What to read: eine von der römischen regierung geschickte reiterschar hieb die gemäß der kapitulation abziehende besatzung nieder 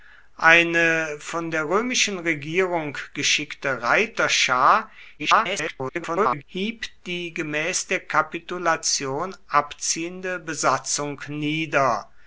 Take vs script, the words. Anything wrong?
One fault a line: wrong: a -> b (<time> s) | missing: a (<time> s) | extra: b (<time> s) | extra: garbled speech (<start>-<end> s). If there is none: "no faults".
extra: garbled speech (5.2-6.4 s)